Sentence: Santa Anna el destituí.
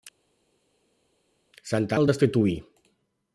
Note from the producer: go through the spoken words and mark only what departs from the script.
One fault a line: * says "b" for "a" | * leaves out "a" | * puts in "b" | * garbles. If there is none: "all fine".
* leaves out "Anna"